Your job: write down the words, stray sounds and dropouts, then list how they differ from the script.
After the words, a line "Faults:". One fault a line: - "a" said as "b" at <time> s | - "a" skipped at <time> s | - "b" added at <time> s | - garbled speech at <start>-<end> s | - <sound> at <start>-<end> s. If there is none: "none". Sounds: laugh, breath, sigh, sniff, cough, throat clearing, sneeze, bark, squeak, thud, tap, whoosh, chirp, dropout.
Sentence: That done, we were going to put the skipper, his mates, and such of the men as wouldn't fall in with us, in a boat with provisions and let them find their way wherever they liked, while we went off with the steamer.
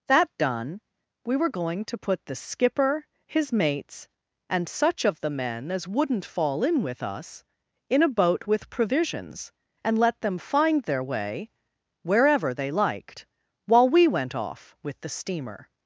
That done, we were going to put the skipper, his mates, and such of the men as wouldn't fall in with us, in a boat with provisions and let them find their way wherever they liked, while we went off with the steamer.
Faults:
none